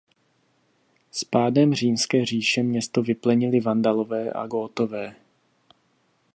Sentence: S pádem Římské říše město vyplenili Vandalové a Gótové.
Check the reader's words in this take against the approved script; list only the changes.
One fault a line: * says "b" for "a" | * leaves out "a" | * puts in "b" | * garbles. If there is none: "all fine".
all fine